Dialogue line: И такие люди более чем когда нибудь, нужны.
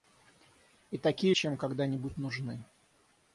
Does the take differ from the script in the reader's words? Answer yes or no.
yes